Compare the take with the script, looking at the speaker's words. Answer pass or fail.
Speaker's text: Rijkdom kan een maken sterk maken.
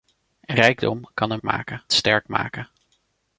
pass